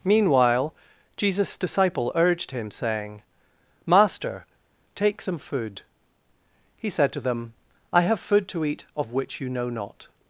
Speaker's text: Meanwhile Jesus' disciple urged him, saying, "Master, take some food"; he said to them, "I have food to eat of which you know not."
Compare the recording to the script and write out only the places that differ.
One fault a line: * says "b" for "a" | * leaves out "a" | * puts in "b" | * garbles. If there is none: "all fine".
all fine